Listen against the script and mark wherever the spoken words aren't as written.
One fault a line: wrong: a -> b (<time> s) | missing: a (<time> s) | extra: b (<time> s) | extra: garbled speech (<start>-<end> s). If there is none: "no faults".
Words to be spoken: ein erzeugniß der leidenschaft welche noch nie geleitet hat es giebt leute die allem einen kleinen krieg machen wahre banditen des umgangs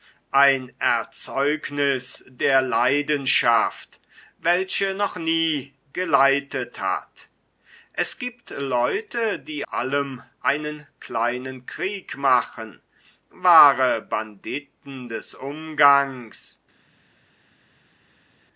no faults